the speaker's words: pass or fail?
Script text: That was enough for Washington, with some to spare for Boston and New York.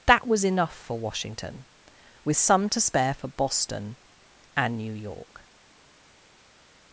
pass